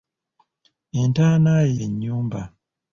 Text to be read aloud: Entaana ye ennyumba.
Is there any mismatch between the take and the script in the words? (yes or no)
no